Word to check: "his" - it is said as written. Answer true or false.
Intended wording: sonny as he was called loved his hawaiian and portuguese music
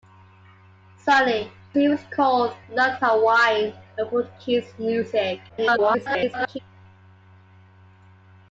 false